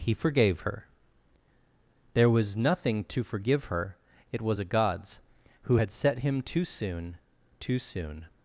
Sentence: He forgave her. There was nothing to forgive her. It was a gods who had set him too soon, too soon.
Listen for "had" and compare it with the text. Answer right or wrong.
right